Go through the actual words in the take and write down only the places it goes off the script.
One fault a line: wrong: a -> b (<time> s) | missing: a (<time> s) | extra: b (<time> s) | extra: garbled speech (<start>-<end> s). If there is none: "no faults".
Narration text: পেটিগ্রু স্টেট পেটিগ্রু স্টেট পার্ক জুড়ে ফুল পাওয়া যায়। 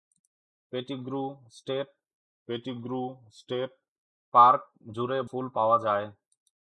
no faults